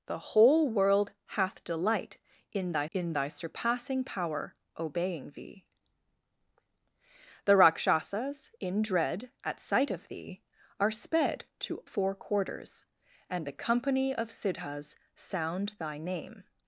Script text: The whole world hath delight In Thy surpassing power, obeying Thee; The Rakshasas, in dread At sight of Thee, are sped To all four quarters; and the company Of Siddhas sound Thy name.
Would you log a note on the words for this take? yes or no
yes